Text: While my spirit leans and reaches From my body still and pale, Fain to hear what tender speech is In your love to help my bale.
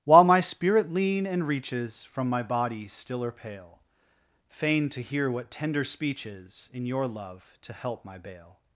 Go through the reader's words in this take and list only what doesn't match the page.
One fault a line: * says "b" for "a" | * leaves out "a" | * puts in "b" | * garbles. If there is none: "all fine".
* says "lean" for "leans"
* says "or" for "and"